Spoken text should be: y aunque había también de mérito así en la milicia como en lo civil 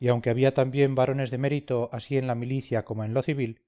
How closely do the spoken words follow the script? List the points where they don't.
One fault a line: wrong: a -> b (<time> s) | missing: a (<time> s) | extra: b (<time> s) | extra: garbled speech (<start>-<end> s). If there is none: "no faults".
extra: varones (0.9 s)